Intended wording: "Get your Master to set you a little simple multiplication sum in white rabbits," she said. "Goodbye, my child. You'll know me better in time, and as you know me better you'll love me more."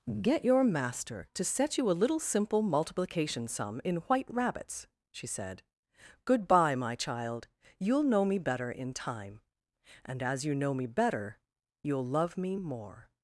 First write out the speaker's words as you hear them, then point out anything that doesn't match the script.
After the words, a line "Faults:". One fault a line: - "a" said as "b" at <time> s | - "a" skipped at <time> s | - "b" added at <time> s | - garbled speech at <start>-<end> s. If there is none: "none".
"Get your Master to set you a little simple multiplication sum in white rabbits," she said. "Goodbye, my child. You'll know me better in time, and as you know me better you'll love me more."
Faults:
none